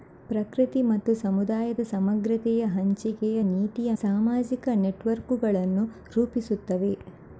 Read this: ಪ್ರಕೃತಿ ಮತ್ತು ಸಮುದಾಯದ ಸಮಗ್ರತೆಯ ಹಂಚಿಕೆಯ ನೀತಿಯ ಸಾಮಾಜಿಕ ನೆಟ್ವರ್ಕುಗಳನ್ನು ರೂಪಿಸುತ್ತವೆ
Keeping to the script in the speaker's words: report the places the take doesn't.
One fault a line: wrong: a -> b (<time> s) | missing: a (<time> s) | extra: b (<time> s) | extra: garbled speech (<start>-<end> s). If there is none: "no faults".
no faults